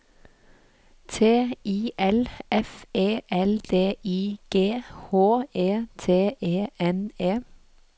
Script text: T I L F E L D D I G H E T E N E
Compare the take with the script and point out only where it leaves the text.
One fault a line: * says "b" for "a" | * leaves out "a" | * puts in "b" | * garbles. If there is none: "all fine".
* leaves out "D"